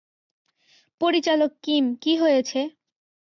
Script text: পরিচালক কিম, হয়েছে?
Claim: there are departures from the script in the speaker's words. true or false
true